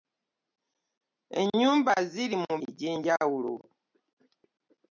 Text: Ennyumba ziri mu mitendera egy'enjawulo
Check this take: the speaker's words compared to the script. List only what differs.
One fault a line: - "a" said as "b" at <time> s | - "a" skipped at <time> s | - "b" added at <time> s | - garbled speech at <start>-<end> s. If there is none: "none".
- "mitendera" skipped at 2.5 s